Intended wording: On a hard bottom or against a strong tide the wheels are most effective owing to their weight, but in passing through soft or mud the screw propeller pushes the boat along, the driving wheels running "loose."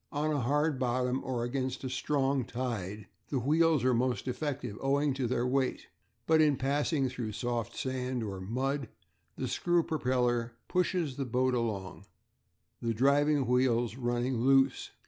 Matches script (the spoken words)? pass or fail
fail